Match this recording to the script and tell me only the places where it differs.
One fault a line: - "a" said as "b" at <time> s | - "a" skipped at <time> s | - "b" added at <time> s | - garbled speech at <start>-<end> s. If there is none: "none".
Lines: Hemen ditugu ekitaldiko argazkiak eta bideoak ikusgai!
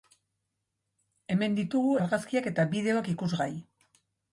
- "ekitaldiko" skipped at 1.9 s